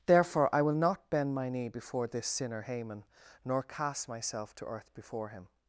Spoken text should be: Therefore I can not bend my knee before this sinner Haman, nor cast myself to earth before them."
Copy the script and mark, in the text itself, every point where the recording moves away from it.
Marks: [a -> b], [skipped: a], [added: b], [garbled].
Therefore I [can -> will] not bend my knee before this sinner Haman, nor cast myself to earth before [them." -> him]